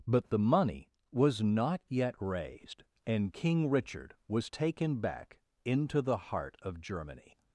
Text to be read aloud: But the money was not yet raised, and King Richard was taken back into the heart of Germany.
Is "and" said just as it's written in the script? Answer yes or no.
yes